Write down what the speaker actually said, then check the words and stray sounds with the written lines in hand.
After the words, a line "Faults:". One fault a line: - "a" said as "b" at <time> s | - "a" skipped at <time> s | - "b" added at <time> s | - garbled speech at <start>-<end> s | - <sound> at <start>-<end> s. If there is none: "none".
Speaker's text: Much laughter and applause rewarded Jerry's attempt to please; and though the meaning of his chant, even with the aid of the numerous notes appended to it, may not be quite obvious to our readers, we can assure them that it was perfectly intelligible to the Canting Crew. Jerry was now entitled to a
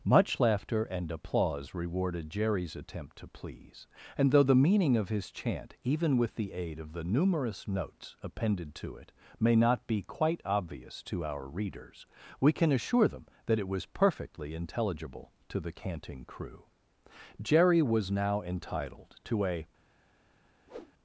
Much laughter and applause rewarded Jerry's attempt to please; and though the meaning of his chant, even with the aid of the numerous notes appended to it, may not be quite obvious to our readers, we can assure them that it was perfectly intelligible to the Canting Crew. Jerry was now entitled to a
Faults:
- whoosh at 20.7-20.9 s